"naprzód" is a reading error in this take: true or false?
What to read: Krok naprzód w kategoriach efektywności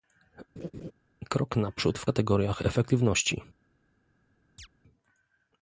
false